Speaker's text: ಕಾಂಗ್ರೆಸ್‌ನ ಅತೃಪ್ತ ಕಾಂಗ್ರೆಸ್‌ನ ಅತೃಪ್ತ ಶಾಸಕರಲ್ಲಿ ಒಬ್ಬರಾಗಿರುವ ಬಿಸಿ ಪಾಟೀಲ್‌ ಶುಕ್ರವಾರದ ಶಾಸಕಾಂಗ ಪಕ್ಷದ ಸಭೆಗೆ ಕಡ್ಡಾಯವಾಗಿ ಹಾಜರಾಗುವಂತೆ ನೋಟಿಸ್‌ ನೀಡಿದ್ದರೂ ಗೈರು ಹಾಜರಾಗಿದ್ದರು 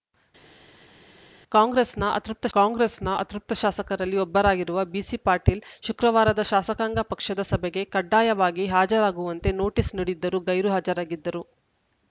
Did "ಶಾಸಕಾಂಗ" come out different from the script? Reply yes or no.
no